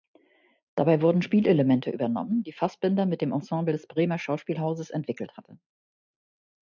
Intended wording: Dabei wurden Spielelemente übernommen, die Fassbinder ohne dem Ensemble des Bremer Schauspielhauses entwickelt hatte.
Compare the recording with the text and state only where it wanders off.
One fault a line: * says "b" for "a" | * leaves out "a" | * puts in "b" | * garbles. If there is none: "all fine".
* says "mit" for "ohne"